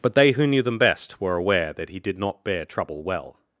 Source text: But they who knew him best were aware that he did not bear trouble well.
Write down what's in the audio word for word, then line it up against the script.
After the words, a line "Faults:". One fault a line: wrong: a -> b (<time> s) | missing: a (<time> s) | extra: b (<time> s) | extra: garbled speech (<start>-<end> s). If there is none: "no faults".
But they who knew them best were aware that he did not bear trouble well.
Faults:
wrong: him -> them (0.6 s)